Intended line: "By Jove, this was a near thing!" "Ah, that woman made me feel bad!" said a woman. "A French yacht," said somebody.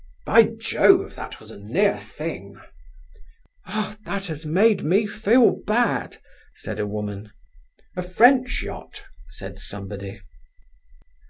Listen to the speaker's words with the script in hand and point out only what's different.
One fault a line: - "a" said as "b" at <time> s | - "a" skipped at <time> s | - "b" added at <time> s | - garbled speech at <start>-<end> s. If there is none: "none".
- "this" said as "that" at 1.1 s
- "woman" said as "has" at 4.2 s